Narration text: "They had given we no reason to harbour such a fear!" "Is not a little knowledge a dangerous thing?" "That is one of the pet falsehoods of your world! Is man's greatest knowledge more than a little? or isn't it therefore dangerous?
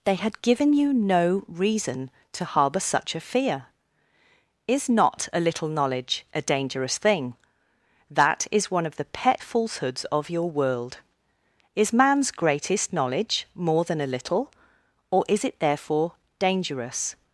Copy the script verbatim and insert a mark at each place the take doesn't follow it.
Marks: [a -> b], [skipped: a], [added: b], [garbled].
"They had given [we -> you] no reason to harbour such a fear!" "Is not a little knowledge a dangerous thing?" "That is one of the pet falsehoods of your world! Is man's greatest knowledge more than a little? or [isn't -> is] it therefore dangerous?